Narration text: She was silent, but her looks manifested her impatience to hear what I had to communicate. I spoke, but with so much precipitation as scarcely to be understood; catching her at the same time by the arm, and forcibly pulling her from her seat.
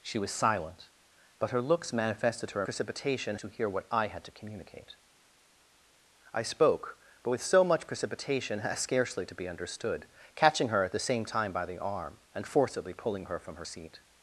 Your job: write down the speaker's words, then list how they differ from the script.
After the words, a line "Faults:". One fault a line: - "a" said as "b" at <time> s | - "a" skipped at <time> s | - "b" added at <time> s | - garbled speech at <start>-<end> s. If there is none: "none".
She was silent, but her looks manifested her precipitation to hear what I had to communicate. I spoke, but with so much precipitation as scarcely to be understood; catching her at the same time by the arm, and forcibly pulling her from her seat.
Faults:
- "impatience" said as "precipitation" at 2.6 s